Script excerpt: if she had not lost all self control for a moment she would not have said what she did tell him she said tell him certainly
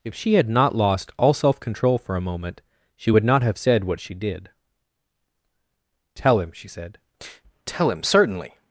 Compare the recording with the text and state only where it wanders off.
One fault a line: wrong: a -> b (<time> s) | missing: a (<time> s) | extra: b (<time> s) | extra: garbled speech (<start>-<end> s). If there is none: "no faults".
no faults